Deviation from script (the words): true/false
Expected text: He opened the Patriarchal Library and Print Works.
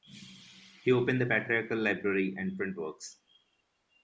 false